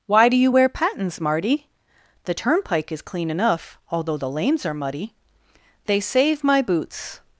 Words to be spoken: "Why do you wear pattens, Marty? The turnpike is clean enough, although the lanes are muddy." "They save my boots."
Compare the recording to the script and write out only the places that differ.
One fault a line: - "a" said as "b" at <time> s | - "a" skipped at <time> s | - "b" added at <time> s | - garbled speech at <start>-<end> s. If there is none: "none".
none